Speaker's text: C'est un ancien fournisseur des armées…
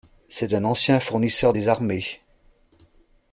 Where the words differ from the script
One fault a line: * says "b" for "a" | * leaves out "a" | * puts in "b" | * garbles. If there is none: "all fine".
all fine